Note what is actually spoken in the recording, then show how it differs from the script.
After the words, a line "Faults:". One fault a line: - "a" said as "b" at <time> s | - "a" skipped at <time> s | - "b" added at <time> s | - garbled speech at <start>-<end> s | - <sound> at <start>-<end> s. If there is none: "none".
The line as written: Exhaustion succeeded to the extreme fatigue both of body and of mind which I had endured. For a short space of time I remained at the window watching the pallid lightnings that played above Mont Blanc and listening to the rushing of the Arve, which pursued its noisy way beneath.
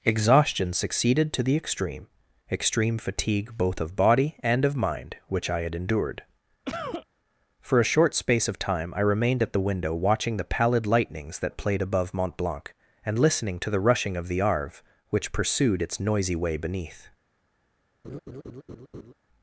Exhaustion succeeded to the extreme extreme fatigue both of body and of mind which I had endured. For a short space of time I remained at the window watching the pallid lightnings that played above Mont Blanc and listening to the rushing of the Arve, which pursued its noisy way beneath.
Faults:
- "extreme" added at 2.5 s
- cough at 6.6-7.1 s
- laugh at 18.0-19.1 s